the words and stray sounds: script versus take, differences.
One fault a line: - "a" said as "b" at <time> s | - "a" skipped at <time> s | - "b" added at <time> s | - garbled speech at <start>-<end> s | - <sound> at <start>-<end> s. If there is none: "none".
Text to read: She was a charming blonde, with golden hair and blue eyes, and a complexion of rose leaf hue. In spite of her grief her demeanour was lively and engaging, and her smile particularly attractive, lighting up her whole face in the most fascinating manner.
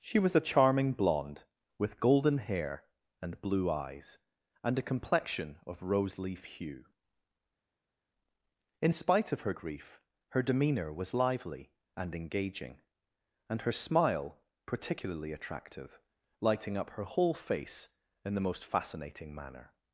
none